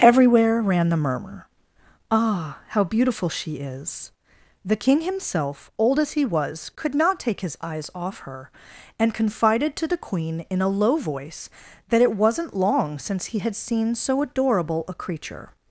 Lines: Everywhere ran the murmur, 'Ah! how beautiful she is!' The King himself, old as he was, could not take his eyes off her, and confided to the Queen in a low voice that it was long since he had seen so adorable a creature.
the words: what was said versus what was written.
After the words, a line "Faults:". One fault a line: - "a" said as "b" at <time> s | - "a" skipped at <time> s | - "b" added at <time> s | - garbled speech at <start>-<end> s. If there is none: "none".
Everywhere ran the murmur, 'Ah! how beautiful she is!' The King himself, old as he was, could not take his eyes off her, and confided to the Queen in a low voice that it wasn't long since he had seen so adorable a creature.
Faults:
- "was" said as "wasn't" at 12.2 s